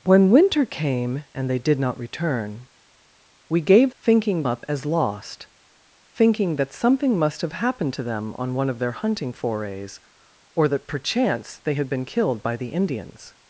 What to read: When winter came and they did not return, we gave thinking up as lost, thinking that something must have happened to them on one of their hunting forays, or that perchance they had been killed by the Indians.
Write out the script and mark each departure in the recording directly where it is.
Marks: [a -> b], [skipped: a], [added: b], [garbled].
When winter came and they did not return, we gave thinking up as lost, thinking that something must have happened to them on one of their hunting forays, or that perchance they had been killed by the Indians.